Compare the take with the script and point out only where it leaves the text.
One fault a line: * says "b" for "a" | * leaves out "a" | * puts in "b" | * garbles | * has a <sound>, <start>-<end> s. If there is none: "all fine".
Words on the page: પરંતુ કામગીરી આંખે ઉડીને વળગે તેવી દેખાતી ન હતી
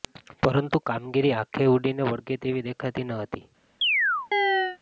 * has a chirp, 3.8-4.8 s